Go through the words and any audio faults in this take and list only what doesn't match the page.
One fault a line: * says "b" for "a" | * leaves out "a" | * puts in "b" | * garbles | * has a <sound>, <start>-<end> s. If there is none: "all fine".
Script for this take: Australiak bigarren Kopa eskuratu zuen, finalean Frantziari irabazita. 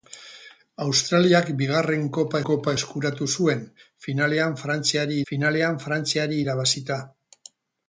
* puts in "Kopa"
* puts in "finalean Frantziari"